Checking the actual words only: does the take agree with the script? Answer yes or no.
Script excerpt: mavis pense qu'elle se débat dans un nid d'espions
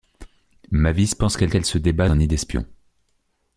no